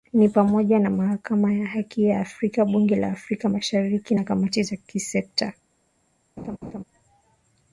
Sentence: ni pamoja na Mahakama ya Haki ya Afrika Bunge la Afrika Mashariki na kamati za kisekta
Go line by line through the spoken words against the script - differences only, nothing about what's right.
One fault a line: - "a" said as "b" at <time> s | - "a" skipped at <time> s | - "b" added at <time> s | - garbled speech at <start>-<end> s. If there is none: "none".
none